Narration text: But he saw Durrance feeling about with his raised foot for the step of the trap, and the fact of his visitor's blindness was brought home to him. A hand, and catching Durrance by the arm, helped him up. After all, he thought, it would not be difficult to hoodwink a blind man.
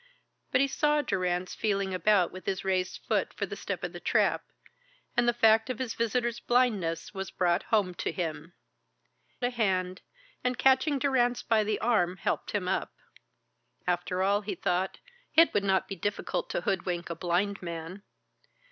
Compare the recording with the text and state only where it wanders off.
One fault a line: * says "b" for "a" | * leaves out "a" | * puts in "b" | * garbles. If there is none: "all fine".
all fine